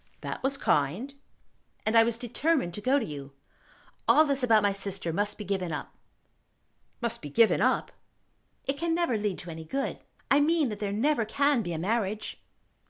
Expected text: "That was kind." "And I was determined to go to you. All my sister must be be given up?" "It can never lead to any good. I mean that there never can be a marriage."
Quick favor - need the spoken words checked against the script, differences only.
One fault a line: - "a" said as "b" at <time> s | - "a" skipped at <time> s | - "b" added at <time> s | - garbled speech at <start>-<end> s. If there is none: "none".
- "this about" added at 4.2 s
- "given up Must" added at 5.4 s